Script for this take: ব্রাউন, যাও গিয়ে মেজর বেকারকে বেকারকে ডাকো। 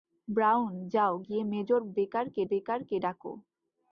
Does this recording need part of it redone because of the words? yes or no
no